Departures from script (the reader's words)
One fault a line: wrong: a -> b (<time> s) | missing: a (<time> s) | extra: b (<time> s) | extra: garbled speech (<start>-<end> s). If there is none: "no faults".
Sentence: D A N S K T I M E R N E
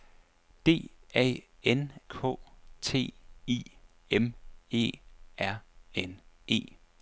missing: S (1.9 s)